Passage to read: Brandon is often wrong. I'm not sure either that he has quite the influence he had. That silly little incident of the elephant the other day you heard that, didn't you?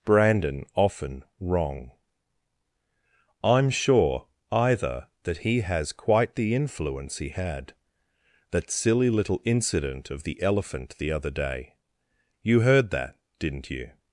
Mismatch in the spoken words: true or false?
true